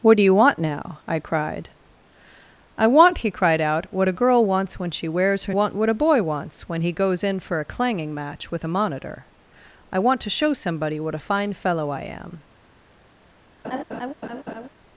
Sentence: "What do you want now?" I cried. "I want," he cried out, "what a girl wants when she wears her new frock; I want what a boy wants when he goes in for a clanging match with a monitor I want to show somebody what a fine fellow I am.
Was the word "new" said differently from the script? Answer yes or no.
yes